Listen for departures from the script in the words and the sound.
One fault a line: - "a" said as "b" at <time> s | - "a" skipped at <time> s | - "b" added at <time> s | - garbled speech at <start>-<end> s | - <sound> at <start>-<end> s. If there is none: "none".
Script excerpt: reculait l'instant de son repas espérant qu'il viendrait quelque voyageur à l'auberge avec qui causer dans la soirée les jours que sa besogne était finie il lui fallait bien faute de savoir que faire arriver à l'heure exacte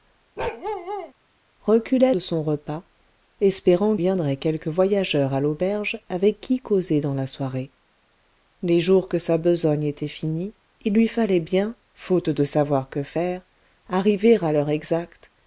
- bark at 0.4-1.1 s
- "l'instant" skipped at 2.1 s
- "qu'il" skipped at 4.0 s